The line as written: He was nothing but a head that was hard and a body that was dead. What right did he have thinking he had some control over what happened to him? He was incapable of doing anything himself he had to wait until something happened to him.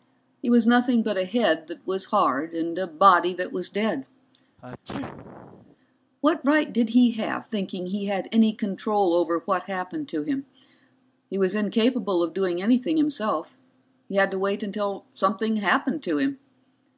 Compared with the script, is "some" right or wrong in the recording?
wrong